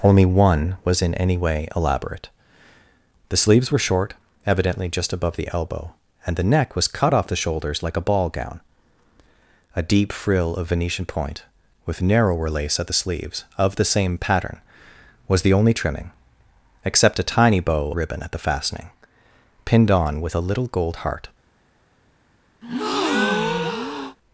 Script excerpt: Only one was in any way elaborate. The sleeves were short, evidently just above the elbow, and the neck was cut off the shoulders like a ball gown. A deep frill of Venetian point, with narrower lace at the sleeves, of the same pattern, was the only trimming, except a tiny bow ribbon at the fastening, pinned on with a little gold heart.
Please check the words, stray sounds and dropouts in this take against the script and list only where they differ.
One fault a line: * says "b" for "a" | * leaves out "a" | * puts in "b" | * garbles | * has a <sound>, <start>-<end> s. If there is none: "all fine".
* has a breath, 22.6-24.2 s